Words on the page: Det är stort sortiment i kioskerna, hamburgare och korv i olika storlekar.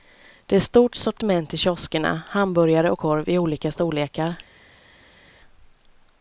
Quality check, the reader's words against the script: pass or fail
pass